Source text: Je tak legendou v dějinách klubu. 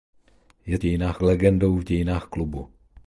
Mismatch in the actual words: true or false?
true